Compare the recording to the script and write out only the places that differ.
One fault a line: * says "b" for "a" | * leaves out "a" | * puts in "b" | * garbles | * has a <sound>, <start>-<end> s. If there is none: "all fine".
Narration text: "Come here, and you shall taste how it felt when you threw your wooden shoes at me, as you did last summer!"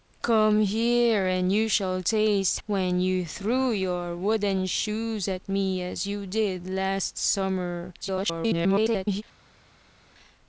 * leaves out "how it felt"
* garbles